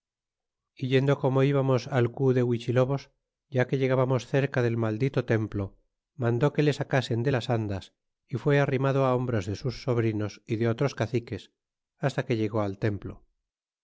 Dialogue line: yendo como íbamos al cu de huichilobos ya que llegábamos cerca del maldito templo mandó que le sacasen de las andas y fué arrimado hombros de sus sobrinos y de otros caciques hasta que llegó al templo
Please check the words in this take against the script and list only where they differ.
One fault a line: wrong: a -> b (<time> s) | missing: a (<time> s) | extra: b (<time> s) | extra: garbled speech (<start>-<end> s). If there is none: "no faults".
no faults